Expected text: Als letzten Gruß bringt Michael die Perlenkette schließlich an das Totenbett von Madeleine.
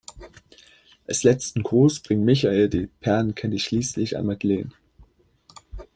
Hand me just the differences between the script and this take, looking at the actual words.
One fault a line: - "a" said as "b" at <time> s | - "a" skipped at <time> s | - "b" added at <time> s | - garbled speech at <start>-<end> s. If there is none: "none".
- "das Totenbett von" skipped at 4.3 s